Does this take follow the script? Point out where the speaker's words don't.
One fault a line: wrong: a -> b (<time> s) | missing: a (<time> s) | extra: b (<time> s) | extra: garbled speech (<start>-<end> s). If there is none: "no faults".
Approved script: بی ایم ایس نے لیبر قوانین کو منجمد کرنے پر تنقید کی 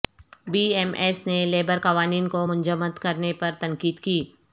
no faults